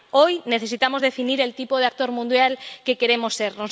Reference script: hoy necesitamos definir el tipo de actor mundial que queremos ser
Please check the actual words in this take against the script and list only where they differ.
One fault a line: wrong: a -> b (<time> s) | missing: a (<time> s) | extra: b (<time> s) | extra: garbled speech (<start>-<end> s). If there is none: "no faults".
no faults